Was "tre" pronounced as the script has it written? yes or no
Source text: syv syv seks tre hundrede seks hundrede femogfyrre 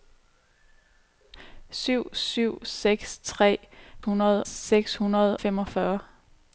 yes